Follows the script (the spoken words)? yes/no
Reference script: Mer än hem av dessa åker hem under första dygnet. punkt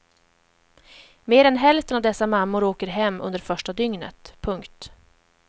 no